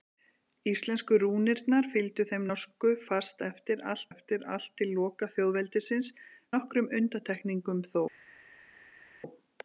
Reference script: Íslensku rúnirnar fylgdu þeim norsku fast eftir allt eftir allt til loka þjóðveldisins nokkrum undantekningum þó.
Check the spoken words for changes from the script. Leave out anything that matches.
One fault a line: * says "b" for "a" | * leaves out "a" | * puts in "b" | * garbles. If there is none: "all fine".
all fine